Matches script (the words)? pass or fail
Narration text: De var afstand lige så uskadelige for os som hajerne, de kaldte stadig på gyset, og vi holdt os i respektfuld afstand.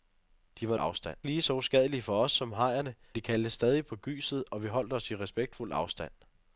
pass